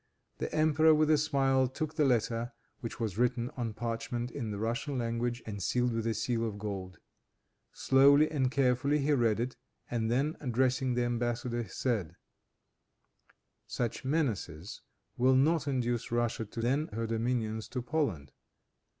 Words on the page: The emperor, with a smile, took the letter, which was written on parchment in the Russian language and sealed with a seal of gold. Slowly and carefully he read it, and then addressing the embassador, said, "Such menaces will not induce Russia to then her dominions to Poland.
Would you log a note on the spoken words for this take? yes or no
no